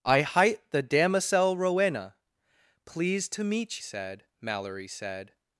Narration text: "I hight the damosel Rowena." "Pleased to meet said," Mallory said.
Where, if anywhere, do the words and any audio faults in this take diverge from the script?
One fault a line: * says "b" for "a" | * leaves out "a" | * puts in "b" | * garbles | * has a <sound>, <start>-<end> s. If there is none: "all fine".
all fine